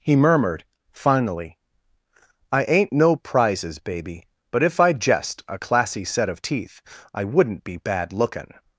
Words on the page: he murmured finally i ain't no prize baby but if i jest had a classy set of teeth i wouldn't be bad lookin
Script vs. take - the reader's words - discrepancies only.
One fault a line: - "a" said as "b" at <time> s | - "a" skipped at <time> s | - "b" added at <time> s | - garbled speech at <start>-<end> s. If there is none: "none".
- "prize" said as "prizes" at 3.2 s
- "had" skipped at 5.4 s